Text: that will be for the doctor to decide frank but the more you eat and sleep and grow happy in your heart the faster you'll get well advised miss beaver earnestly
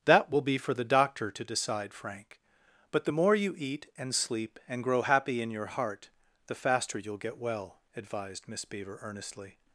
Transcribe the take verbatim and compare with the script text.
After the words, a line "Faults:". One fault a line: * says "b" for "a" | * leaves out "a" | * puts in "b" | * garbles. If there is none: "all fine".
that will be for the doctor to decide frank but the more you eat and sleep and grow happy in your heart the faster you'll get well advised miss beaver earnestly
Faults:
all fine